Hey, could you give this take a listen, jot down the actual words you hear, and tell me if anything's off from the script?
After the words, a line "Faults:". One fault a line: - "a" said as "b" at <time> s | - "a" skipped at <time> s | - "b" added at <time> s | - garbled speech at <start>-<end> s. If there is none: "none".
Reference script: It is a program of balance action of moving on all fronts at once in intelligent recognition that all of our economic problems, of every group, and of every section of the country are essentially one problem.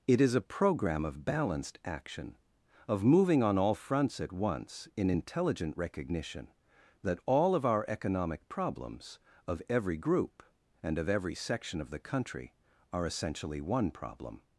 It is a program of balanced action of moving on all fronts at once in intelligent recognition that all of our economic problems, of every group, and of every section of the country are essentially one problem.
Faults:
- "balance" said as "balanced" at 1.2 s